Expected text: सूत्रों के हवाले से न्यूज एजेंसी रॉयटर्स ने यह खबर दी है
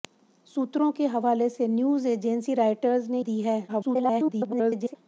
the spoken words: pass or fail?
fail